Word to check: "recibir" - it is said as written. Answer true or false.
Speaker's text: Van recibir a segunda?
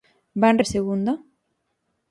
false